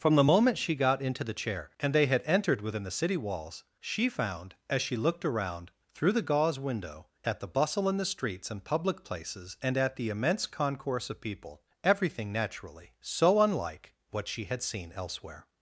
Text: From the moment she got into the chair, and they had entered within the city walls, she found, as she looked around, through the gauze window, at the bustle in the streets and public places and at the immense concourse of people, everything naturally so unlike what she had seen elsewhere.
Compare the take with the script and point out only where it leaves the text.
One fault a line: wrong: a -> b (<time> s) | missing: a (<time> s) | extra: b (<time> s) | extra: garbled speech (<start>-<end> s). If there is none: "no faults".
no faults